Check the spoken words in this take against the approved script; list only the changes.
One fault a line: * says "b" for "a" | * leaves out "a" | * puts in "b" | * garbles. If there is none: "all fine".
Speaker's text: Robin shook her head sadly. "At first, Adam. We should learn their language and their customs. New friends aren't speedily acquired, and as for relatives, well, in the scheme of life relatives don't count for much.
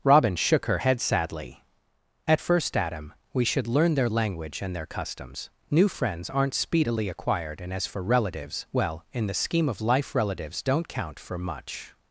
all fine